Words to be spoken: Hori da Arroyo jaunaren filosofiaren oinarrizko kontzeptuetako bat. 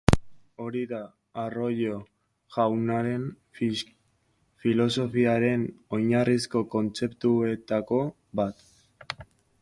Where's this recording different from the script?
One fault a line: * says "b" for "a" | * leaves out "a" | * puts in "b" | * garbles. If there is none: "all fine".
all fine